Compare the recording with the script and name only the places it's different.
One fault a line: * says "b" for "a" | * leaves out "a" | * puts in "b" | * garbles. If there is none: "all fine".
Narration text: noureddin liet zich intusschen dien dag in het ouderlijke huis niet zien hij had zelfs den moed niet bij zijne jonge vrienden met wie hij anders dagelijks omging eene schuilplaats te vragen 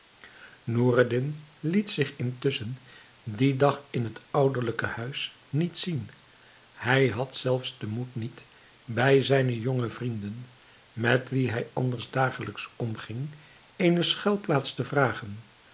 all fine